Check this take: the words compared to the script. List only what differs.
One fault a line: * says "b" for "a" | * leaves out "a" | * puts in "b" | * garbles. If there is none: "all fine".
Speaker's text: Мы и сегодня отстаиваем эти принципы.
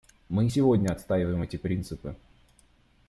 all fine